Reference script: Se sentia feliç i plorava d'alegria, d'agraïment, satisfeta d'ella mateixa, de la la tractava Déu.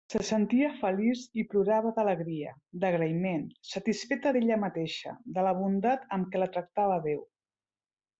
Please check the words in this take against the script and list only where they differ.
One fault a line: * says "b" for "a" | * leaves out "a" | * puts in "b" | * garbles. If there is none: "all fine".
* puts in "bondat amb què"